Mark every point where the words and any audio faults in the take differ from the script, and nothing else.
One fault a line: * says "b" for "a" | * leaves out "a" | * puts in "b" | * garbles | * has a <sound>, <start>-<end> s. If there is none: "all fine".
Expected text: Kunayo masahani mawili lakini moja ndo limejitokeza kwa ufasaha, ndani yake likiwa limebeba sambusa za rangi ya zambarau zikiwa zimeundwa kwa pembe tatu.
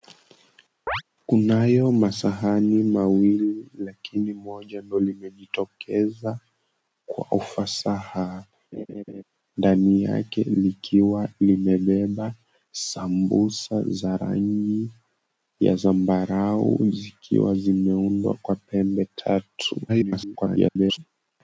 * has a chirp, 0.9-1.0 s
* has a laugh, 8.7-9.2 s
* garbles